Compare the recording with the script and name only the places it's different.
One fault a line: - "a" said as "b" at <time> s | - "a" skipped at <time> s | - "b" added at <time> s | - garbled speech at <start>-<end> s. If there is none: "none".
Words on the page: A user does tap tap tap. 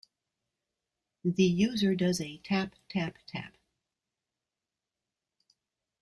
- "A" said as "The" at 1.2 s
- "a" added at 2.2 s